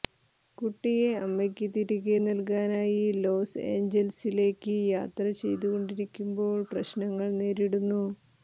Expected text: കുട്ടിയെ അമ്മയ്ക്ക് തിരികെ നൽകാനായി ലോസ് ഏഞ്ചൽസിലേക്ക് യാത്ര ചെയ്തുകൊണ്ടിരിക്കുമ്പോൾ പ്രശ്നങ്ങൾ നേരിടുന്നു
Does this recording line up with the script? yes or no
yes